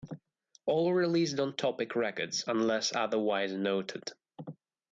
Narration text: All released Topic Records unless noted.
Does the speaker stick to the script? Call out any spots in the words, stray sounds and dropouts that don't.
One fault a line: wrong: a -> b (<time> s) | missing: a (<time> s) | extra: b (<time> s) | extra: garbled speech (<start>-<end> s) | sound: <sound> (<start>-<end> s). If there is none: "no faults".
extra: on (1.4 s)
extra: otherwise (2.9 s)